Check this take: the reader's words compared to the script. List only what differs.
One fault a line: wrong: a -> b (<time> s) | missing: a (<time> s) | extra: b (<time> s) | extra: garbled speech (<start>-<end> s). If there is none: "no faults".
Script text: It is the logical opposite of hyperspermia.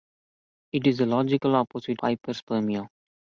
missing: of (2.0 s)